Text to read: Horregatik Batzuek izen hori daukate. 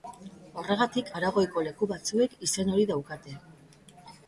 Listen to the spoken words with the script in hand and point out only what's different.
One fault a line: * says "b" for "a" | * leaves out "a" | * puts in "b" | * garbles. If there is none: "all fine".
* puts in "Aragoiko leku"